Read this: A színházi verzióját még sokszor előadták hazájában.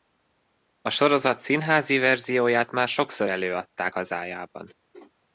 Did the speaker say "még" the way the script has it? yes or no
no